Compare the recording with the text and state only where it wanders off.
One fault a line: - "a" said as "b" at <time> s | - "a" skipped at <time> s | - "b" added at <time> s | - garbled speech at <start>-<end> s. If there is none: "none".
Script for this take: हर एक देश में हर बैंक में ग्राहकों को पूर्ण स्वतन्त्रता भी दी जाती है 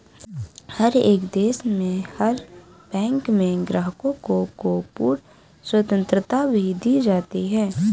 - "को" added at 4.6 s